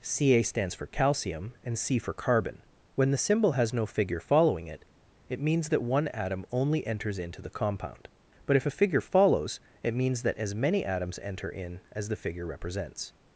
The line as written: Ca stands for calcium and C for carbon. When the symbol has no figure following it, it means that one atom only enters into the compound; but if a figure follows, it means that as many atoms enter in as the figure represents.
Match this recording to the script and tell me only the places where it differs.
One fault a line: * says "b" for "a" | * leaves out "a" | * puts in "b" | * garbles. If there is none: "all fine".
all fine